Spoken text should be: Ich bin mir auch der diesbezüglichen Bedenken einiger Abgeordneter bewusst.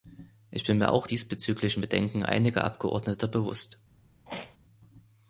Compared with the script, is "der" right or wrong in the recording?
wrong